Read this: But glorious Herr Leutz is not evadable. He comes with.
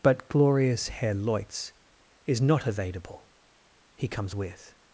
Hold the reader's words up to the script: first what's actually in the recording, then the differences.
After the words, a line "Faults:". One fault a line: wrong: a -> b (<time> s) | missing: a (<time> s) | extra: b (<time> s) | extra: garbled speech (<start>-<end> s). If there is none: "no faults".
But glorious Herr Leutz is not evadable. He comes with.
Faults:
no faults